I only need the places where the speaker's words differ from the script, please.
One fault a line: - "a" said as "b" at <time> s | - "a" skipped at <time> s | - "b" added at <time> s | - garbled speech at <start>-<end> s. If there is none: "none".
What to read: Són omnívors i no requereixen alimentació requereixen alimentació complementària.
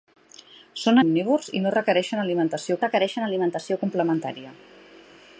none